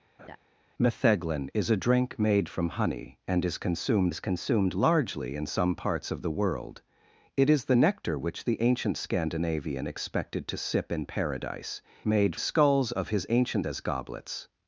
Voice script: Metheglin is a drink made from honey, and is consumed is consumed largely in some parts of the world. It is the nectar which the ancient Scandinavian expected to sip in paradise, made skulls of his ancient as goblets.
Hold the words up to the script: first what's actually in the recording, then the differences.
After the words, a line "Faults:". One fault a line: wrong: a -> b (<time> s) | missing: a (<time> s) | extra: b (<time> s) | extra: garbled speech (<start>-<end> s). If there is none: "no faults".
Metheglin is a drink made from honey, and is consumed is consumed largely in some parts of the world. It is the nectar which the ancient Scandinavian expected to sip in paradise, made skulls of his ancient as goblets.
Faults:
no faults